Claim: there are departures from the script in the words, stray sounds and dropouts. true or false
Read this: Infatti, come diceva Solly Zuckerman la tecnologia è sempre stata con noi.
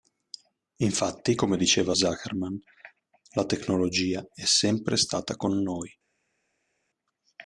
true